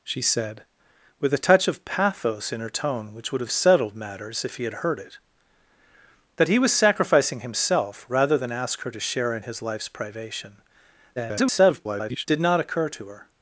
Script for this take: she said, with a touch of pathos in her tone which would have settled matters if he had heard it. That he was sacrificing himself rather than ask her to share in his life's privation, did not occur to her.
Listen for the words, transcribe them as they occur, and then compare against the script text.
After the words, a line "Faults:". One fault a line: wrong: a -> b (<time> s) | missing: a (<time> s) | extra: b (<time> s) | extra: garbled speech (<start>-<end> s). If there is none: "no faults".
she said, with a touch of pathos in her tone which would have settled matters if he had heard it. That he was sacrificing himself rather than ask her to share in his life's privation, [garbled] did not occur to her.
Faults:
extra: garbled speech (11.2-12.3 s)